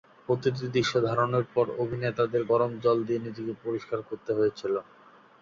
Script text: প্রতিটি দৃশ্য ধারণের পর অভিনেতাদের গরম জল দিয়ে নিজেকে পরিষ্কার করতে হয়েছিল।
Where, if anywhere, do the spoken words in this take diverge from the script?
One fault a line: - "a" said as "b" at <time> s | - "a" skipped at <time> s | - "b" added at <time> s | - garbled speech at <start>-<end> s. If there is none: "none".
none